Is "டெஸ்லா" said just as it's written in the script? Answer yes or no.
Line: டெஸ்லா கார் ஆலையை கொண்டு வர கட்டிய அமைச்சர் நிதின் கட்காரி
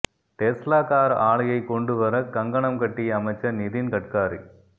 yes